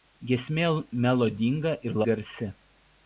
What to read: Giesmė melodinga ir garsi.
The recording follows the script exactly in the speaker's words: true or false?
true